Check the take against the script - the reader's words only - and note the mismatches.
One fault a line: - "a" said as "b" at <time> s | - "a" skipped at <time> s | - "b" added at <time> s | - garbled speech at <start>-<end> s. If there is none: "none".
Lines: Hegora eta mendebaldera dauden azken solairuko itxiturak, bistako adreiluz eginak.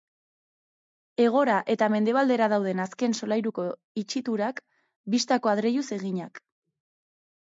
none